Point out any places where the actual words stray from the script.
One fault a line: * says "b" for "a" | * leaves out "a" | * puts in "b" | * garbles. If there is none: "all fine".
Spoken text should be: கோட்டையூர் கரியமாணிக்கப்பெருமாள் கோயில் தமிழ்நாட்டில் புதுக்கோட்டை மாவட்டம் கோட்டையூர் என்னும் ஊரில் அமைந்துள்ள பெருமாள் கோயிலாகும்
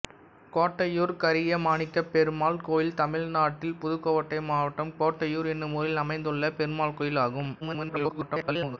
* garbles